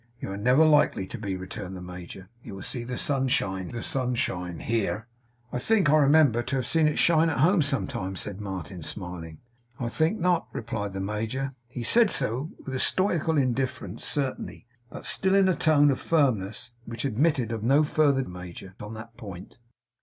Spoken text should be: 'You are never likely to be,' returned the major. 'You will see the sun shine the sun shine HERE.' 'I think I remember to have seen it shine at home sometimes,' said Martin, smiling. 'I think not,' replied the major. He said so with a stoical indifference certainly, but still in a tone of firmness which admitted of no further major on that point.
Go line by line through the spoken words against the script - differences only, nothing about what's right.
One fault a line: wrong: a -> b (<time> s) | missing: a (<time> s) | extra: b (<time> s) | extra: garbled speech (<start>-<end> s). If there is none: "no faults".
no faults